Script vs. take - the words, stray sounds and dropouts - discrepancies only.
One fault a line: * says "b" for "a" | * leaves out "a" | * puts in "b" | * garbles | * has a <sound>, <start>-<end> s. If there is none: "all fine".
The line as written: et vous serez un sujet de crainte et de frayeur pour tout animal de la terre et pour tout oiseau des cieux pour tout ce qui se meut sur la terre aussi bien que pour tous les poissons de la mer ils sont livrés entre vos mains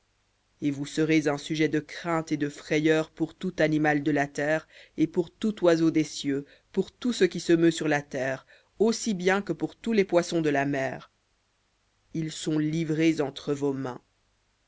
all fine